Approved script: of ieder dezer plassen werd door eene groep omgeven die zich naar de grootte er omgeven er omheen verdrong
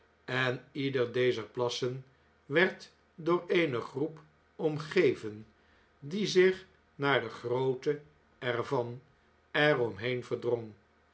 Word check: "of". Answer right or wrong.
wrong